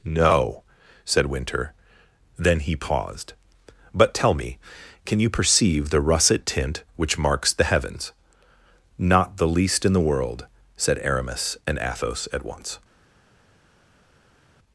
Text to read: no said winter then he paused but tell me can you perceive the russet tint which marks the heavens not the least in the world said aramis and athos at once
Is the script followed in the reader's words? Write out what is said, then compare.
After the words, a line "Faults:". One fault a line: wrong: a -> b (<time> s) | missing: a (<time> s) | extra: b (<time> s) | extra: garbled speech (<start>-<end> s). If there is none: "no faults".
no said winter then he paused but tell me can you perceive the russet tint which marks the heavens not the least in the world said aramis and athos at once
Faults:
no faults